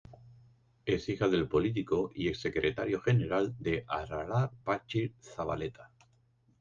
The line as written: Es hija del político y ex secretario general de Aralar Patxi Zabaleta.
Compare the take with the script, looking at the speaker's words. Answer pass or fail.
pass